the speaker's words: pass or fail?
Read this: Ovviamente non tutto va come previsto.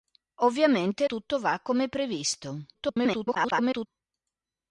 fail